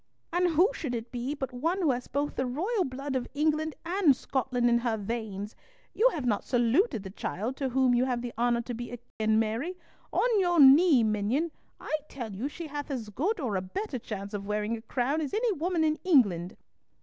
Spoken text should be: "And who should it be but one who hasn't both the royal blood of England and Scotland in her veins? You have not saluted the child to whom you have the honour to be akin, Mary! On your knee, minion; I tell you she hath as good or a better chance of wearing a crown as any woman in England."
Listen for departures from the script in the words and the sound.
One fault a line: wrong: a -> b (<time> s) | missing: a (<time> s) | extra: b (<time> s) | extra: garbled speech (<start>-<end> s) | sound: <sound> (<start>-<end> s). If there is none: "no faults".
wrong: hasn't -> has (1.9 s)
sound: dropout (9.1-9.2 s)